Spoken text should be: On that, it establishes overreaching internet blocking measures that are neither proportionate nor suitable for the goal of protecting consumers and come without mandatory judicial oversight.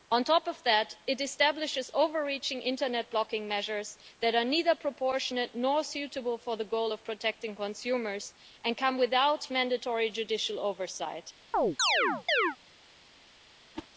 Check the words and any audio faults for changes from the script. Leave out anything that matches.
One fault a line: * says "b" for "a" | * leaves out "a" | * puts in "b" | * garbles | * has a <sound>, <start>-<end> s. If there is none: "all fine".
* puts in "top of"
* has a chirp, 11.5-12.6 s
* has a whoosh, 13.7-13.9 s